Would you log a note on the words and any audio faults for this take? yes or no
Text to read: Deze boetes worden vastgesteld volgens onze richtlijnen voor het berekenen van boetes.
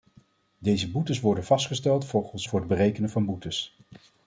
yes